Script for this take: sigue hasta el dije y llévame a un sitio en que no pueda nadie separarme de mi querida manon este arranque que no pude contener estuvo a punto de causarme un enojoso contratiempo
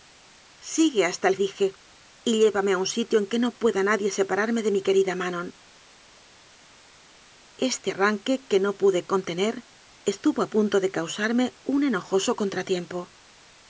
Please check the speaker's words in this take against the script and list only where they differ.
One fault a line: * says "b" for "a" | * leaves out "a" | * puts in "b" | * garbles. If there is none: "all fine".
all fine